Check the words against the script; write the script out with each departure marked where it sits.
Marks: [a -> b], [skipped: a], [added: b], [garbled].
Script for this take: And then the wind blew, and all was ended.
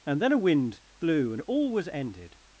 And then [the -> a] wind blew, and all was ended.